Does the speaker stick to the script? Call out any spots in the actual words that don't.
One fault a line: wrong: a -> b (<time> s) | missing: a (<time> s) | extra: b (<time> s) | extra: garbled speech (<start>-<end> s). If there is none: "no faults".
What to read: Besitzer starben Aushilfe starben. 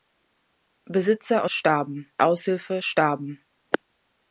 no faults